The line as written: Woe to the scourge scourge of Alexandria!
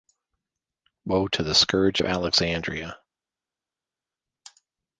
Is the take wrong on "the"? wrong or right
right